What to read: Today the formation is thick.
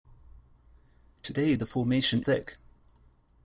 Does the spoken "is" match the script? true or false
false